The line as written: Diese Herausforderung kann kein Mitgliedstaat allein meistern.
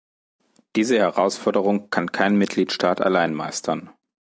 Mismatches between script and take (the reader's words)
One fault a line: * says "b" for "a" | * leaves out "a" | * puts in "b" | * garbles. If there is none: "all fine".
all fine